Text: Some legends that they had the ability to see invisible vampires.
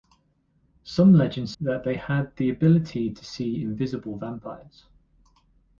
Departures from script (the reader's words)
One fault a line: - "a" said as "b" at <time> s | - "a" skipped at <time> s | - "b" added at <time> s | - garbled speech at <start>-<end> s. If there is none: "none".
none